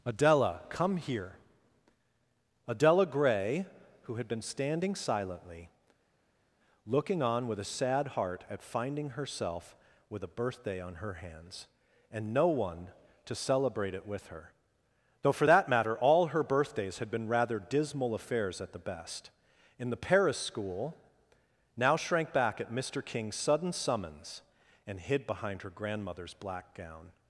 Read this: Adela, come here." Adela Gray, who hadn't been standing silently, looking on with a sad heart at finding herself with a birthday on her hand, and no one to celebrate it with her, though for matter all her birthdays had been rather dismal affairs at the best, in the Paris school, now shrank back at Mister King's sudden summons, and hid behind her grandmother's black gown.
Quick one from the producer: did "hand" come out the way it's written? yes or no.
no